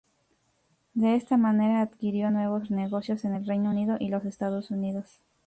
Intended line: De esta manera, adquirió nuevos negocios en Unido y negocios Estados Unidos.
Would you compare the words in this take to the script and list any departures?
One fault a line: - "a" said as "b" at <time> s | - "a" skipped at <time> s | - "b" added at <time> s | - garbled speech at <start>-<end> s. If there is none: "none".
- "el Reino" added at 3.3 s
- "negocios" said as "los" at 4.1 s